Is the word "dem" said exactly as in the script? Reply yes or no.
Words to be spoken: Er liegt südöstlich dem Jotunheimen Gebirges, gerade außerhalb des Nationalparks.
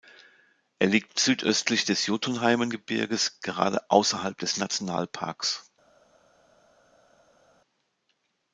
no